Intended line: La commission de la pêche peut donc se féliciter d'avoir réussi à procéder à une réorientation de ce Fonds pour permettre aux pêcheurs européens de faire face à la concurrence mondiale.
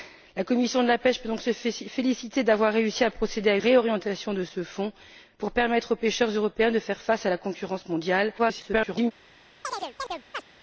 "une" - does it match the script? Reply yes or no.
no